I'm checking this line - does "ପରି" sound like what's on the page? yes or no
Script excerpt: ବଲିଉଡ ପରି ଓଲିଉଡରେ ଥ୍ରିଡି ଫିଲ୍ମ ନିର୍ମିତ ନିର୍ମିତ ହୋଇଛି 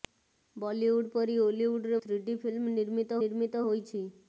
yes